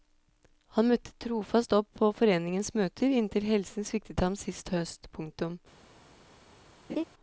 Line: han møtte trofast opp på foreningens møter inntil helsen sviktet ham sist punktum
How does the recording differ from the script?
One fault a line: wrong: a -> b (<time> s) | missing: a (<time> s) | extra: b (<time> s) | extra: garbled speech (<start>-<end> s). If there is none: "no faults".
extra: høst (4.7 s)